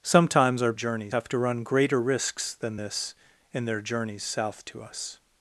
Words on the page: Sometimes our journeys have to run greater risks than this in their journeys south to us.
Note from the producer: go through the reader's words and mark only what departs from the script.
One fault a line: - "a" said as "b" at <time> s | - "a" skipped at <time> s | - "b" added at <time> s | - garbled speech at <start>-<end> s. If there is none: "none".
none